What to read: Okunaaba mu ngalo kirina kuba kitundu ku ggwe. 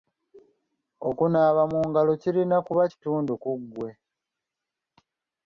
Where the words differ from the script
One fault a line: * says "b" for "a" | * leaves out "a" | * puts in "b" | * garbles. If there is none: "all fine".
all fine